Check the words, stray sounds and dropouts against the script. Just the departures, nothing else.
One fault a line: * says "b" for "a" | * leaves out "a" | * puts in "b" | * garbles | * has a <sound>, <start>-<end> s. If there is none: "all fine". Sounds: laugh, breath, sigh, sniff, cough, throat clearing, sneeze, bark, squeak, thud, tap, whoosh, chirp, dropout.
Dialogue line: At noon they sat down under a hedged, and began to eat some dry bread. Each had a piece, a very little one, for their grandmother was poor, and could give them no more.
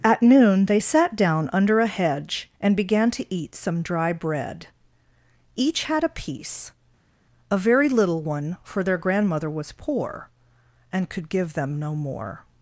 * says "hedge" for "hedged"